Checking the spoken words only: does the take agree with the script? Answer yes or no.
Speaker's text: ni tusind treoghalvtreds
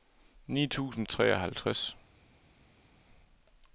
yes